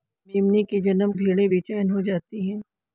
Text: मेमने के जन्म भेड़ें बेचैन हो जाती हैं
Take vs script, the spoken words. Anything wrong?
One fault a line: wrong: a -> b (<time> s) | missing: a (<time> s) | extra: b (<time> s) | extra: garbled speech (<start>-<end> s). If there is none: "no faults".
no faults